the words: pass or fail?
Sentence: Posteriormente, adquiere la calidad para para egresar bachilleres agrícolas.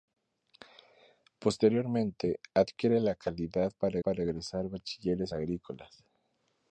pass